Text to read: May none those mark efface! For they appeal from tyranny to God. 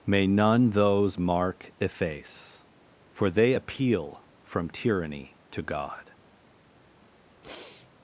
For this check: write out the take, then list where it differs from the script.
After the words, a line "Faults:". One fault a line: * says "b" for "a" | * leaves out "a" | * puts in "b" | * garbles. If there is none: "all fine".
May none those mark efface! For they appeal from tyranny to God.
Faults:
all fine